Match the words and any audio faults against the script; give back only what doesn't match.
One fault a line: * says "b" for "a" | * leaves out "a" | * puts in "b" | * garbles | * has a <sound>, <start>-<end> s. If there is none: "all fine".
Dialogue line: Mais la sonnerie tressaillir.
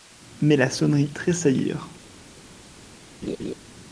* has a laugh, 3.2-3.5 s